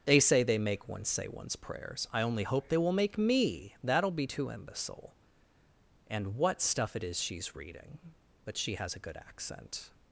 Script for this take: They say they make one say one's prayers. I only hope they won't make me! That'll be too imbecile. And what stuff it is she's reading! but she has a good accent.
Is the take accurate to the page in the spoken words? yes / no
no